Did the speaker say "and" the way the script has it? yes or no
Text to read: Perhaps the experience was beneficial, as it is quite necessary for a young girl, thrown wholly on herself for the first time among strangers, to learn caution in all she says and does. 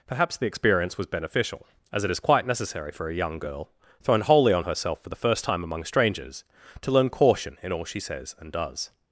yes